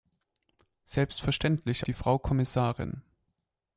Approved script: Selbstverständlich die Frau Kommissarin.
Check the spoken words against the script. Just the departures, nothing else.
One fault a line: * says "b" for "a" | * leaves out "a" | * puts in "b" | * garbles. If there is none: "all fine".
all fine